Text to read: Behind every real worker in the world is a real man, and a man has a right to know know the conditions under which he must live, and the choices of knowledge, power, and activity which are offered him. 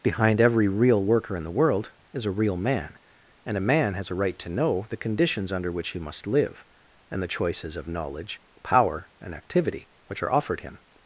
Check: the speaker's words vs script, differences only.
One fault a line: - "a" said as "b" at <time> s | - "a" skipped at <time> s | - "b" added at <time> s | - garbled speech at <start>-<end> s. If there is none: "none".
- "know" skipped at 4.8 s